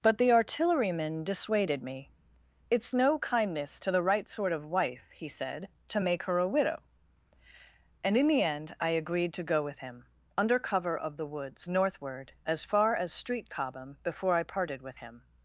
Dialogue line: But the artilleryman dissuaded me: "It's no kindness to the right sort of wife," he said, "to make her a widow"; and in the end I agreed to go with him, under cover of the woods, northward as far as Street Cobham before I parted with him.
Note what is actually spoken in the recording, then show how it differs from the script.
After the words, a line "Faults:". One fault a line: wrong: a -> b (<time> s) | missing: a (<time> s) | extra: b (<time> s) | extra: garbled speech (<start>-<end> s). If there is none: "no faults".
But the artilleryman dissuaded me: "It's no kindness to the right sort of wife," he said, "to make her a widow"; and in the end I agreed to go with him, under cover of the woods, northward as far as Street Cobham before I parted with him.
Faults:
no faults